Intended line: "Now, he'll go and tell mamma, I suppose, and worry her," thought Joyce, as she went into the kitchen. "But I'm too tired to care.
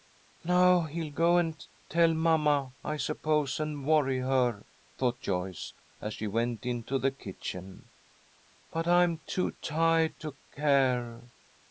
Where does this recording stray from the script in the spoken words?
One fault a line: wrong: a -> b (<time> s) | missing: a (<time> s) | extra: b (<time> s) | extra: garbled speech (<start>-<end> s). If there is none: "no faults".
no faults